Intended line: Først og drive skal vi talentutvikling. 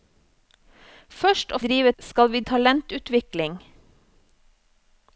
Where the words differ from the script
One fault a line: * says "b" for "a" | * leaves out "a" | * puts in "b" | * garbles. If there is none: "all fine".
all fine